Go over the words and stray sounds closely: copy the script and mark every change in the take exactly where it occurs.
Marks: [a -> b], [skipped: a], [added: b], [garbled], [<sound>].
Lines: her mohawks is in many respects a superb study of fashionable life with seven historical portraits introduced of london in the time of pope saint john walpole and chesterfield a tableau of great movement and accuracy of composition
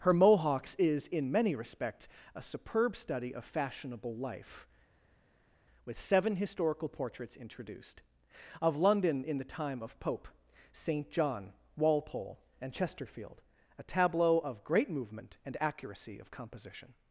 her mohawks is in many respects a superb study of fashionable life with seven historical portraits introduced of london in the time of pope saint john walpole and chesterfield a tableau of great movement and accuracy of composition